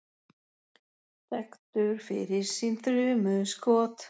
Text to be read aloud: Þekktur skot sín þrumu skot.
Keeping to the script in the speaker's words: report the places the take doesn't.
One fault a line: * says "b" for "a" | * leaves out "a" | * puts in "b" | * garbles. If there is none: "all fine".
* says "fyrir" for "skot"